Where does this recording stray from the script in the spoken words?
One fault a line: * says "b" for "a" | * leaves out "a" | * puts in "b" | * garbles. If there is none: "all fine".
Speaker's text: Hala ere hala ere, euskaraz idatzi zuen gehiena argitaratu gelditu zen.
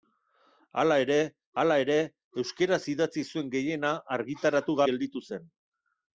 all fine